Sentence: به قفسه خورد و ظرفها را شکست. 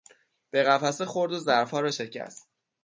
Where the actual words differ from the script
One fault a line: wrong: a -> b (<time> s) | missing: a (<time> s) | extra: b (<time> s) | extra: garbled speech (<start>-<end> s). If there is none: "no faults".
no faults